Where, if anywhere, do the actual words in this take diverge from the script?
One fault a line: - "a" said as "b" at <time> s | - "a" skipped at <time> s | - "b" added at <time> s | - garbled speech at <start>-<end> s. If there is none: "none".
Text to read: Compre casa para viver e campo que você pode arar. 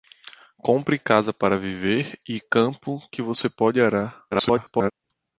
- garbled speech at 4.3-4.9 s